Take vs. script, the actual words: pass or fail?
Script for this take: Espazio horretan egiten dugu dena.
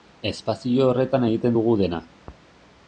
pass